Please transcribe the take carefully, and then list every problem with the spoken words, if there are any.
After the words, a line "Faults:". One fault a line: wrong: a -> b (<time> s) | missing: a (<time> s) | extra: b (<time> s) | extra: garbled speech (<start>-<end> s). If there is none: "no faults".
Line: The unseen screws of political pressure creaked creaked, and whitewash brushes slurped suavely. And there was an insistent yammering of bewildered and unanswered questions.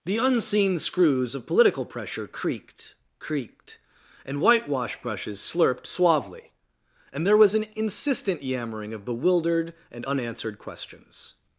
The unseen screws of political pressure creaked creaked, and whitewash brushes slurped suavely. And there was an insistent yammering of bewildered and unanswered questions.
Faults:
no faults